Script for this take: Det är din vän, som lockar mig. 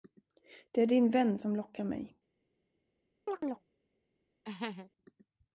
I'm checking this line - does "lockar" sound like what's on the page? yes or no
yes